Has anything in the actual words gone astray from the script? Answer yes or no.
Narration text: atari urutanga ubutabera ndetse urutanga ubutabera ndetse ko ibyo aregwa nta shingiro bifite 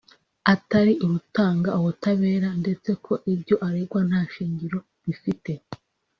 yes